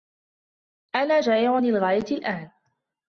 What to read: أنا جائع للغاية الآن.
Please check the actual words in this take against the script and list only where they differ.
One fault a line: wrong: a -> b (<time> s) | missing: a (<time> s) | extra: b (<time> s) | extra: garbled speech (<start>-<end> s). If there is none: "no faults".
no faults